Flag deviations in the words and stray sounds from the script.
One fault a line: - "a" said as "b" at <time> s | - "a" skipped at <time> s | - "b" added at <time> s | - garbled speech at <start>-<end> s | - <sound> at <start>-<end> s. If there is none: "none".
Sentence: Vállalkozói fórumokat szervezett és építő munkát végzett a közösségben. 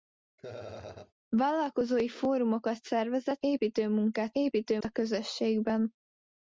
- laugh at 0.4-1.1 s
- "és" skipped at 3.4 s
- "végzett" said as "építő" at 4.3 s